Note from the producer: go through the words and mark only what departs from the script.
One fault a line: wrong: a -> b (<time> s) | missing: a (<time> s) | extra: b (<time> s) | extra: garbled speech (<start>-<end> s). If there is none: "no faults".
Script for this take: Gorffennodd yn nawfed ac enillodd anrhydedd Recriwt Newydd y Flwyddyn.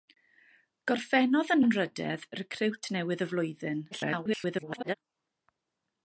missing: nawfed ac enillodd (1.6 s)
extra: garbled speech (3.9-4.9 s)